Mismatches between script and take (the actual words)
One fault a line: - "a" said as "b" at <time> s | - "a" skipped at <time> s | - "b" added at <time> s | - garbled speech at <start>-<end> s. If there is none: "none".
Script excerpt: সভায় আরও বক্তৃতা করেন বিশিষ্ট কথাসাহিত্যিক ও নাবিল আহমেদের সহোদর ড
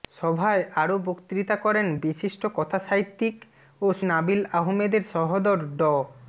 none